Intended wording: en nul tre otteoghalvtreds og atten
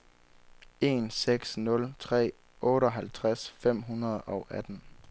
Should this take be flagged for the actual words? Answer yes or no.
yes